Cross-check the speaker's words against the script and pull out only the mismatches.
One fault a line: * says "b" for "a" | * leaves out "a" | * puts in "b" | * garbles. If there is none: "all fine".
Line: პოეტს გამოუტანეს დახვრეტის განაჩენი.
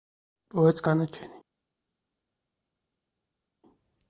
* leaves out "გამოუტანეს დახვრეტის"